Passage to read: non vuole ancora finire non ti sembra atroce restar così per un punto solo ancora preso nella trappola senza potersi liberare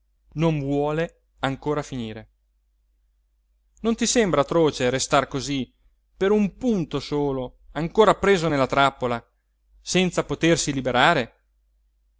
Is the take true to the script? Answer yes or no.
yes